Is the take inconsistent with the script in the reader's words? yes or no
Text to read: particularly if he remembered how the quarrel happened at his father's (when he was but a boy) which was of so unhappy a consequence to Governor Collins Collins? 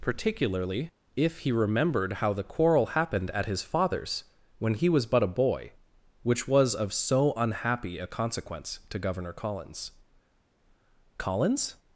no